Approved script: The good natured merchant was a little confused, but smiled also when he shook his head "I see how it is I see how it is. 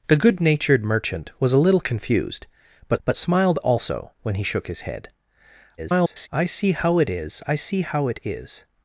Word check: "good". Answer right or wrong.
right